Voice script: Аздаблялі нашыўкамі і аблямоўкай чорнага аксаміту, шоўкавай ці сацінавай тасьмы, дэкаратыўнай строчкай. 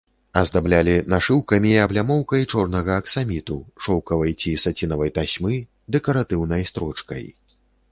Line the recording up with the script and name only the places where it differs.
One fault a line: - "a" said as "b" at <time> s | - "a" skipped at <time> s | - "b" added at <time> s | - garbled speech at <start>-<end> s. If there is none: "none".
none